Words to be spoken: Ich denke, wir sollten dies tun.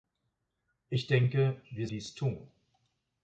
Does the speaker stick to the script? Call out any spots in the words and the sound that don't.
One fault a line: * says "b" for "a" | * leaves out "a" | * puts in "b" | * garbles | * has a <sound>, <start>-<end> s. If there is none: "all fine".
* leaves out "sollten"